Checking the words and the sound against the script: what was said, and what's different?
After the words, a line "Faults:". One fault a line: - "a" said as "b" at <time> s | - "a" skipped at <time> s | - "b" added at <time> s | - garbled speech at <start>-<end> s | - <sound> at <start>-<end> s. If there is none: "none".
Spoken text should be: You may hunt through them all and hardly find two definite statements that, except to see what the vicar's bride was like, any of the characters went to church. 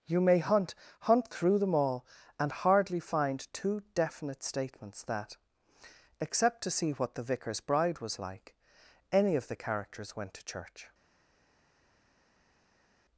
You may hunt hunt through them all and hardly find two definite statements that, except to see what the vicar's bride was like, any of the characters went to church.
Faults:
- "hunt" added at 1.0 s